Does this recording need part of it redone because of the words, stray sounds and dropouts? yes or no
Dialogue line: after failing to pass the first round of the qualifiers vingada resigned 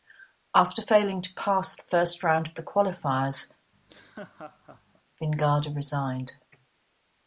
yes